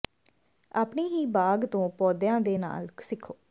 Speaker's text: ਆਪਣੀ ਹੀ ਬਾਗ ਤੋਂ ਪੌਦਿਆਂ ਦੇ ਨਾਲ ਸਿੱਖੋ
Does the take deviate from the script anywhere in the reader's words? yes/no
no